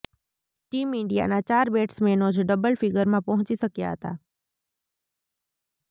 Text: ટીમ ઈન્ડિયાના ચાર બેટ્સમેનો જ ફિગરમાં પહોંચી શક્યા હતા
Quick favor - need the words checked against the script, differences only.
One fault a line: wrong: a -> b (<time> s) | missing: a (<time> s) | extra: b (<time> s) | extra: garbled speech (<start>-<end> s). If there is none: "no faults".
extra: ડબલ (2.5 s)